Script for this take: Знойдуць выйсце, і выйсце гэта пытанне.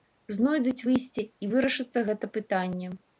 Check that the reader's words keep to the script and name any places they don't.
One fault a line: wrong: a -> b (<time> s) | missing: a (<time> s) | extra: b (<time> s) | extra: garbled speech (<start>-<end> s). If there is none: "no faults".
wrong: выйсце -> вырашыцца (1.5 s)